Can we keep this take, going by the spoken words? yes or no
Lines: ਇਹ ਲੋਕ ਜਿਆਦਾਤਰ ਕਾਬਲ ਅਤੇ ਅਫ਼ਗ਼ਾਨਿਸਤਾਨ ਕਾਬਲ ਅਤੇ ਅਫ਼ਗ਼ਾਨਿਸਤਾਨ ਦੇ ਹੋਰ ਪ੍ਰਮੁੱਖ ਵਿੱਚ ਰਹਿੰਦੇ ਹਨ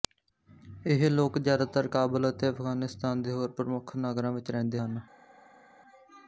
no